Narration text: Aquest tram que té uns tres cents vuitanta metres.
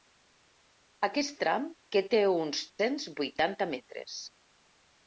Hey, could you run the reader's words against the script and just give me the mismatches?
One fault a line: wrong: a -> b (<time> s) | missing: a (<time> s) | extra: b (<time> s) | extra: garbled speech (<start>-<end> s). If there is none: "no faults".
missing: tres (2.6 s)